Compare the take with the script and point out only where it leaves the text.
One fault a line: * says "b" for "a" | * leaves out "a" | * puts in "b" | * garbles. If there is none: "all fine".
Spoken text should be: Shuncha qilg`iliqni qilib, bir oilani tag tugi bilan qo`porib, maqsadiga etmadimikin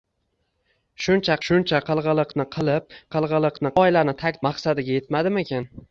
* puts in "shuncha"
* says "qilg`iliqni" for "bir"
* leaves out "tugi bilan qo`porib"